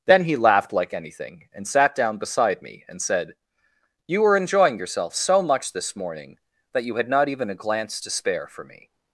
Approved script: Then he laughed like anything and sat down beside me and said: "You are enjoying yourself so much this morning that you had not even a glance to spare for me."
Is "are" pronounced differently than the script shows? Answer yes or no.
yes